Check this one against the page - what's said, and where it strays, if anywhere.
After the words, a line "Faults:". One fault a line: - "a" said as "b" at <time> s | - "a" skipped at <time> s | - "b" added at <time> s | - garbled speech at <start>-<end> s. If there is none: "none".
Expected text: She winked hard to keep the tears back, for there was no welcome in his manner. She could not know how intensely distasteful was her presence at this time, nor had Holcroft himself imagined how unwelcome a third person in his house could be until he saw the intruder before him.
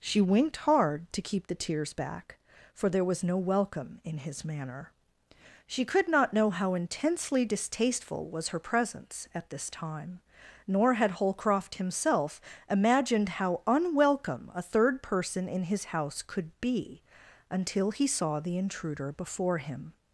She winked hard to keep the tears back, for there was no welcome in his manner. She could not know how intensely distasteful was her presence at this time, nor had Holcroft himself imagined how unwelcome a third person in his house could be until he saw the intruder before him.
Faults:
none